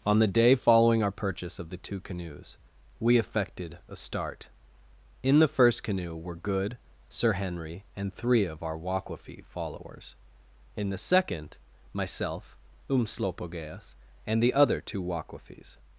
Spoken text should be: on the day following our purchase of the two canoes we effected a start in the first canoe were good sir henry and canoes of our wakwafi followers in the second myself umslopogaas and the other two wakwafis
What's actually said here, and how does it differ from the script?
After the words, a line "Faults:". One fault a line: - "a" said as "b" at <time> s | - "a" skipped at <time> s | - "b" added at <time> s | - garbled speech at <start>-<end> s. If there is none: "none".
on the day following our purchase of the two canoes we effected a start in the first canoe were good sir henry and three of our wakwafi followers in the second myself umslopogaas and the other two wakwafis
Faults:
- "canoes" said as "three" at 8.1 s